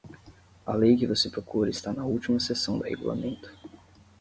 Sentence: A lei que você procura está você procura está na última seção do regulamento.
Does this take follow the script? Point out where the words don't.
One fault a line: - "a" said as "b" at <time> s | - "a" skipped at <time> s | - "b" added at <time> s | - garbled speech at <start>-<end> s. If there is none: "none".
- "você procura está" skipped at 1.9 s